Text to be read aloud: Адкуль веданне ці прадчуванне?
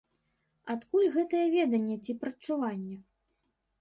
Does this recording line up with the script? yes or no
no